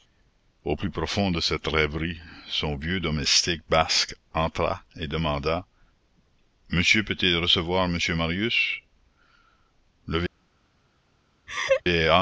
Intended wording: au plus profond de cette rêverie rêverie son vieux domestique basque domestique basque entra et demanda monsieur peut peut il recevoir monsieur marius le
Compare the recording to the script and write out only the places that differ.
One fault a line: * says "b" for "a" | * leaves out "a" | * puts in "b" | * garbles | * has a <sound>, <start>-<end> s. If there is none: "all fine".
* leaves out "rêverie"
* leaves out "domestique basque"
* leaves out "peut"
* has a laugh, 11.5-11.8 s